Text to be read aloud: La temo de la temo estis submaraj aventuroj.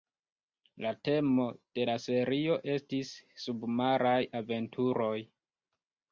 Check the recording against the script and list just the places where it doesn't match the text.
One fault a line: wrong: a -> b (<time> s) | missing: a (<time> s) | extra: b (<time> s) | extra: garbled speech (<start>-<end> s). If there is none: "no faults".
wrong: temo -> serio (2.0 s)